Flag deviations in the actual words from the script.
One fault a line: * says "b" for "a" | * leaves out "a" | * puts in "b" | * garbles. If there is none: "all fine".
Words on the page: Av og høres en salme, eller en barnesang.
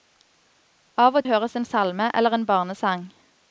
all fine